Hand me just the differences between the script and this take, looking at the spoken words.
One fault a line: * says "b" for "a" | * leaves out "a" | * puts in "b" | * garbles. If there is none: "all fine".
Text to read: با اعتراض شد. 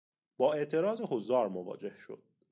* puts in "حضار مواجه"